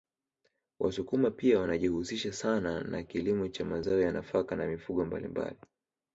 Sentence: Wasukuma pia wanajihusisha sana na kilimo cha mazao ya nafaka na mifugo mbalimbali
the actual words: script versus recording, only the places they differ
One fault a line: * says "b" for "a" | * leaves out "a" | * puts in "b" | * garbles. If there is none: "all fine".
all fine